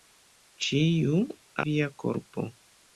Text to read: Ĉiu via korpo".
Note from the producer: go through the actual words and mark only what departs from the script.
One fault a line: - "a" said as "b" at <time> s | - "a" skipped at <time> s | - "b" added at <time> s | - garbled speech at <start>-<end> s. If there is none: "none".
none